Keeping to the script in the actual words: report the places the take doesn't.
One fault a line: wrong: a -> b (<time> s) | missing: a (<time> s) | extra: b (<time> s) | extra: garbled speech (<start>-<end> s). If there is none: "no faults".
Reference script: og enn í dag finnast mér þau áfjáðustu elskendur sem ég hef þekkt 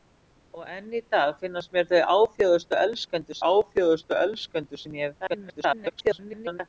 extra: áfjáðustu elskendur (3.5 s)
extra: garbled speech (5.3-6.6 s)